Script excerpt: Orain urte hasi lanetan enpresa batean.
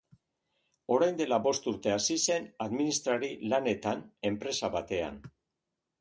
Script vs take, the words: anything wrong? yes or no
yes